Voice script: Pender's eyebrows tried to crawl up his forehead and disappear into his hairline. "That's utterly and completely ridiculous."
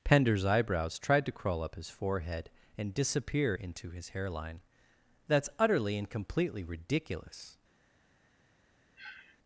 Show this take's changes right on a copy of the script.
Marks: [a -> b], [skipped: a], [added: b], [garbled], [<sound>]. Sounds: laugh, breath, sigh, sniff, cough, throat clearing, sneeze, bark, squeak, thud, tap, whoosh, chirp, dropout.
Pender's eyebrows tried to crawl up his forehead and disappear into his hairline. "That's utterly and completely ridiculous." [sniff]